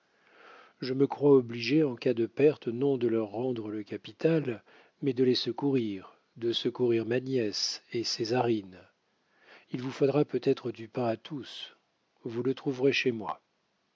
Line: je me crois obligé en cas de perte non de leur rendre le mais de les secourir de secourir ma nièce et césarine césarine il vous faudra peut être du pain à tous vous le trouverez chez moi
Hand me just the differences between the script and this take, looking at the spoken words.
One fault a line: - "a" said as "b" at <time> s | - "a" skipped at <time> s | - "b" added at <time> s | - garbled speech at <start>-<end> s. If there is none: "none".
- "capital" added at 3.8 s
- "césarine" skipped at 8.8 s